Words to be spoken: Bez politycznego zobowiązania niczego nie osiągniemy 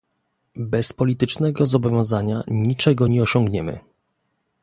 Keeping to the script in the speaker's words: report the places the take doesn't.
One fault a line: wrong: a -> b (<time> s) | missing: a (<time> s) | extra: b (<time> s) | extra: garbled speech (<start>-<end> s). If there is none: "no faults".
no faults